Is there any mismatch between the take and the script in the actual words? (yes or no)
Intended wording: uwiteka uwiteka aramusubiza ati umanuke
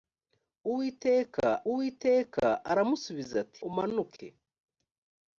no